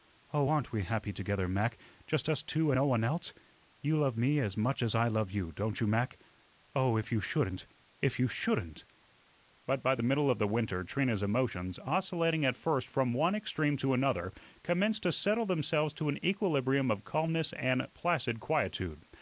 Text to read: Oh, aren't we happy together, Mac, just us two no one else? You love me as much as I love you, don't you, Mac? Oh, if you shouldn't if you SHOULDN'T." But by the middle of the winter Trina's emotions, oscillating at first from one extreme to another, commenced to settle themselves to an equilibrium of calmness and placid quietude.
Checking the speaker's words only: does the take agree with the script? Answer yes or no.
yes